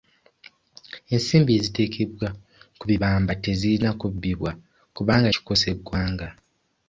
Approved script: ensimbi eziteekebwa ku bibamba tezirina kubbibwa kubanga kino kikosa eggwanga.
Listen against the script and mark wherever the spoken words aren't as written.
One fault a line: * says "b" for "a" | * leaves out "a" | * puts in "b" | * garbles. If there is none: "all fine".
* leaves out "kino"